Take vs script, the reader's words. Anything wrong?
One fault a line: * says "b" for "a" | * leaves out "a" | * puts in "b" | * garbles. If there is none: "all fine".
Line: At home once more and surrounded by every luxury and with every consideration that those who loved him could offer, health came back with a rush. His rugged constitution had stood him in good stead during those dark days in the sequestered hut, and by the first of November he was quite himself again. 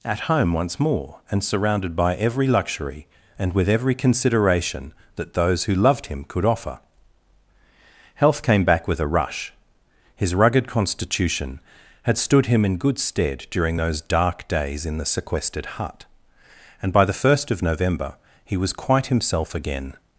all fine